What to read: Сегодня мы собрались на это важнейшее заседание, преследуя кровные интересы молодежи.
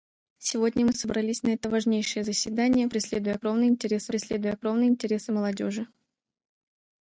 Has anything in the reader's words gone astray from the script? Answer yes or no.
yes